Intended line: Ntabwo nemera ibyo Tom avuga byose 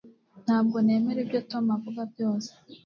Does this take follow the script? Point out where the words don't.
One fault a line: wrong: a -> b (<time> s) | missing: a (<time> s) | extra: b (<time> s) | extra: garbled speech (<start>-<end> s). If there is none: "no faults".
no faults